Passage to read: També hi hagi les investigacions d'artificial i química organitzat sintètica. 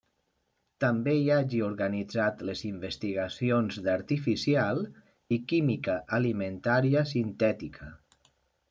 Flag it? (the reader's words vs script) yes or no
yes